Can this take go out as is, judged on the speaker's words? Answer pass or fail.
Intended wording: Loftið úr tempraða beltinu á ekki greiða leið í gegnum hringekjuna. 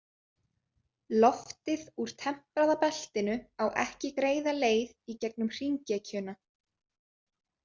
pass